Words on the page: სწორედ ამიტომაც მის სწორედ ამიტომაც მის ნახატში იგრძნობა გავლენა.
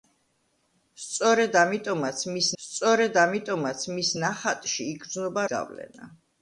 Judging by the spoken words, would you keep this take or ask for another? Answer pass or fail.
pass